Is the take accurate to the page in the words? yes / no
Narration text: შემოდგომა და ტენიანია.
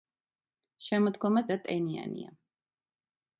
yes